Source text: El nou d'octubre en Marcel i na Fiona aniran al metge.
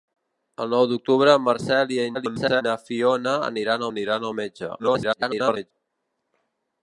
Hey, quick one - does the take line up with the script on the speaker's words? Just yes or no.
no